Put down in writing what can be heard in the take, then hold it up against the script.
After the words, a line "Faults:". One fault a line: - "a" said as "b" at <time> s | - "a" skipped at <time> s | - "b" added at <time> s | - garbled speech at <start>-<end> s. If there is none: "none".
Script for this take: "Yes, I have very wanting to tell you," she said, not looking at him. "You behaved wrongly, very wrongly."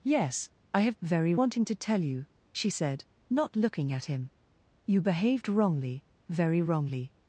"Yes, I have very wanting to tell you," she said, not looking at him. "You behaved wrongly, very wrongly."
Faults:
none